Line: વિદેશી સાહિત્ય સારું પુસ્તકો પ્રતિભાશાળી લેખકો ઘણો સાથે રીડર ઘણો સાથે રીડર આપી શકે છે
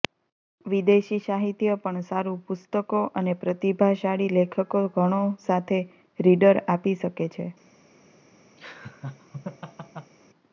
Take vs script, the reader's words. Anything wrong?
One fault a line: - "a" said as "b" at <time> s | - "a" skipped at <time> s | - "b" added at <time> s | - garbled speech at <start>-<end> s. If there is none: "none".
- "પણ" added at 1.8 s
- "અને" added at 3.2 s
- "ઘણો સાથે રીડર" skipped at 6.6 s